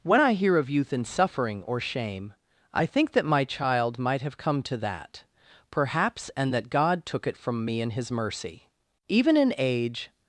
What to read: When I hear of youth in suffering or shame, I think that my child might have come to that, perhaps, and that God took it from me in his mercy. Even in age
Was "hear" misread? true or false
false